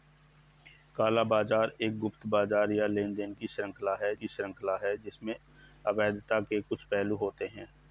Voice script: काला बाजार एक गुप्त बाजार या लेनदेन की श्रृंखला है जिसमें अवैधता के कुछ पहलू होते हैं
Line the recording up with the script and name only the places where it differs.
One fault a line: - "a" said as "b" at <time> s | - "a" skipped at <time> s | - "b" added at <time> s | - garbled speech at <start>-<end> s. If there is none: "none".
- "की श्रृंखला है" added at 4.1 s